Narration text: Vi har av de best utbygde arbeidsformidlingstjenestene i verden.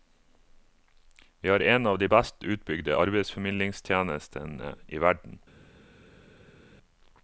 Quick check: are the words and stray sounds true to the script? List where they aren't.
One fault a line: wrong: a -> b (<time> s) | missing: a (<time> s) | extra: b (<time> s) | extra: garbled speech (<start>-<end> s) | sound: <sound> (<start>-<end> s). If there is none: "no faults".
extra: en (1.6 s)